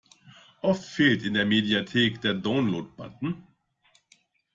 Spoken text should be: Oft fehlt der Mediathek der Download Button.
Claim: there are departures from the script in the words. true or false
true